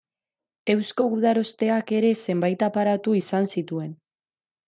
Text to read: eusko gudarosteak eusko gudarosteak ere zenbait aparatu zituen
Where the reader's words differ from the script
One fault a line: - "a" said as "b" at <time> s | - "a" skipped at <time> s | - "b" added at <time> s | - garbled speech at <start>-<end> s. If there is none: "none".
- "eusko gudarosteak" skipped at 1.9 s
- "izan" added at 3.2 s